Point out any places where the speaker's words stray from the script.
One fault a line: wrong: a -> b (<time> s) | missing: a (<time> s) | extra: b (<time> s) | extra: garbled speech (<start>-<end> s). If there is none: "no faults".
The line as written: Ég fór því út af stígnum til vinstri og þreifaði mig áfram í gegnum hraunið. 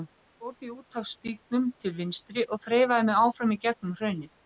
no faults